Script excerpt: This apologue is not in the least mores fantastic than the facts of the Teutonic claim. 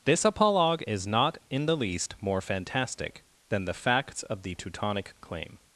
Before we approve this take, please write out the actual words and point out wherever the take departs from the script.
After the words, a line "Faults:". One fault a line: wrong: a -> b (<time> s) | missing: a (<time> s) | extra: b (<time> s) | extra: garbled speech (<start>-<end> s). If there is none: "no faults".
This apologue is not in the least more fantastic than the facts of the Teutonic claim.
Faults:
wrong: mores -> more (2.2 s)